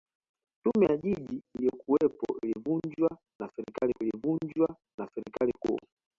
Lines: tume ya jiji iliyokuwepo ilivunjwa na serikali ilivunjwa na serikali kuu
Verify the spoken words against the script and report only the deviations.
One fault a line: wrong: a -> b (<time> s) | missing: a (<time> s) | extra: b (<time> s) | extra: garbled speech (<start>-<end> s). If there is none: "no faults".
no faults